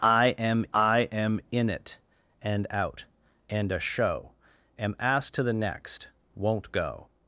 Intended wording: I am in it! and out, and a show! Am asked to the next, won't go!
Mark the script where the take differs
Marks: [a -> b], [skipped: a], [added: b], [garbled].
I am [added: I am] in it! and out, and a show! Am asked to the next, won't go!